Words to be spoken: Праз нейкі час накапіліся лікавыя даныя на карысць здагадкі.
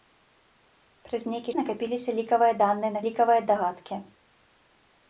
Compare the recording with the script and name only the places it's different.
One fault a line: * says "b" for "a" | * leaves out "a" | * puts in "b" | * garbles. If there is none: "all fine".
* leaves out "час"
* says "лікавыя" for "карысць"